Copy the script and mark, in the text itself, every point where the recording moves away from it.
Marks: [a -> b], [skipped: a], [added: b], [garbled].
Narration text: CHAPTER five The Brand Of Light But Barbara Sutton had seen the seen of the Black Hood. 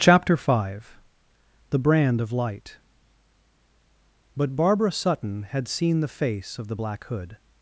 CHAPTER five The Brand Of Light But Barbara Sutton had seen the [seen -> face] of the Black Hood.